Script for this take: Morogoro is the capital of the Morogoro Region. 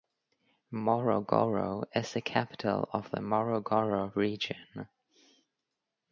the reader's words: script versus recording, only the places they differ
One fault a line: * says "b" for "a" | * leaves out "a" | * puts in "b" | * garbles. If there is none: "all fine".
all fine